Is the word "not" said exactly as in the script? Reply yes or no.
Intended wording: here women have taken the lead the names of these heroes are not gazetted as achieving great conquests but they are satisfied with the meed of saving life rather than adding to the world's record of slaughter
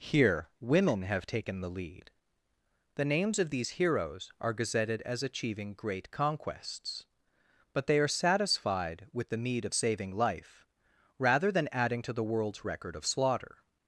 no